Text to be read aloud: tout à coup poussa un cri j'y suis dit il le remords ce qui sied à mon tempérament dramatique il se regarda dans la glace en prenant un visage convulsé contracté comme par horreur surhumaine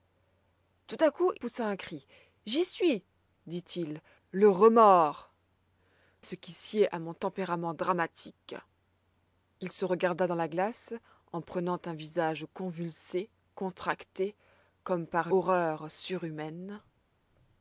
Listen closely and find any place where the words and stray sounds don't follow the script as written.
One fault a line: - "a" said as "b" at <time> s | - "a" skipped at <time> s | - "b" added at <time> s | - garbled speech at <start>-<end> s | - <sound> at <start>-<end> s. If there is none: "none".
none